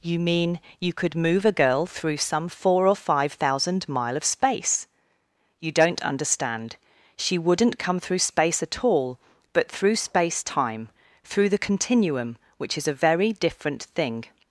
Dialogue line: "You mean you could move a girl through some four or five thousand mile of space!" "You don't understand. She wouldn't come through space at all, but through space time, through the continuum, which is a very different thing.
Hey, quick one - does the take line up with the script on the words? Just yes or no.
yes